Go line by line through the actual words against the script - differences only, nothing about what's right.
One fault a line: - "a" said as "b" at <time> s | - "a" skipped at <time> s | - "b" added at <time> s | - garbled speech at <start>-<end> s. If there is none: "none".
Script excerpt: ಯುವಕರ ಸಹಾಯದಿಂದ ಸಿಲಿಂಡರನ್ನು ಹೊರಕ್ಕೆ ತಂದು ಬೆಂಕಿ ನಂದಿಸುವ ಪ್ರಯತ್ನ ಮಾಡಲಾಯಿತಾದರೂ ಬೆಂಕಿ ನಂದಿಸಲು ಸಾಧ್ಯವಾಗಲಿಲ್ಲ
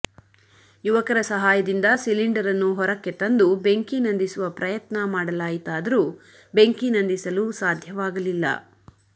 none